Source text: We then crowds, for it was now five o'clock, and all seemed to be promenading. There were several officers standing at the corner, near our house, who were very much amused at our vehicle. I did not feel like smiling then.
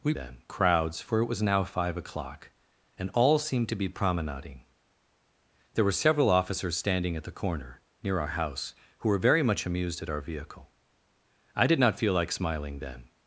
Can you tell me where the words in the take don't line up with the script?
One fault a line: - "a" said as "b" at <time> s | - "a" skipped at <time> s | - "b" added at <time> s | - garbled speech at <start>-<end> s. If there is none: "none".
none